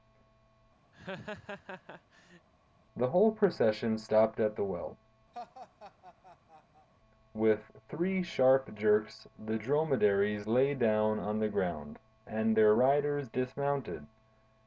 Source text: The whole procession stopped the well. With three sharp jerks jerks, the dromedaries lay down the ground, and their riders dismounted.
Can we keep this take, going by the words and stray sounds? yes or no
no